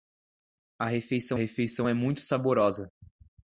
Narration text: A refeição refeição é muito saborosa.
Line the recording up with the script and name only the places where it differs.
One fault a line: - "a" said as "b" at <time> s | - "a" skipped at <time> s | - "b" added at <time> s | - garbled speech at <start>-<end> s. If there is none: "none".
none